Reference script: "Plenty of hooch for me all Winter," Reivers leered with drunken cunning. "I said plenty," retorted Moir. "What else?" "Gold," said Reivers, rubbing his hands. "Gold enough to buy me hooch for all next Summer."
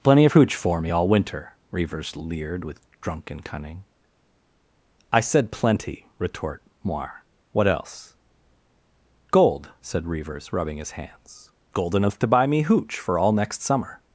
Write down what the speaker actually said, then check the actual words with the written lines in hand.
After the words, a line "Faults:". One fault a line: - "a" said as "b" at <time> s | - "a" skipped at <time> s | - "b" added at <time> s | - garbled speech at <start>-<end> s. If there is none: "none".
"Plenty of hooch for me all Winter," Reivers leered with drunken cunning. "I said plenty," retort Moir. "What else?" "Gold," said Reivers, rubbing his hands. "Gold enough to buy me hooch for all next Summer."
Faults:
- "retorted" said as "retort" at 6.2 s